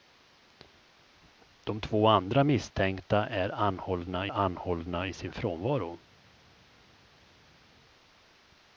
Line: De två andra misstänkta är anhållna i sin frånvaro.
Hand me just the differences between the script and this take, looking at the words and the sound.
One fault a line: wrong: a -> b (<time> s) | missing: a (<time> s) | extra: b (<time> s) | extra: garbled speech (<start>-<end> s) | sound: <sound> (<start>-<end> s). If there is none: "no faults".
extra: anhållna (4.3 s)